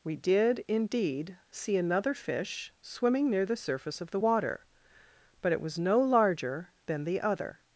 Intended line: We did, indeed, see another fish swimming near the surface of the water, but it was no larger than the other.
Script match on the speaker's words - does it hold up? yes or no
yes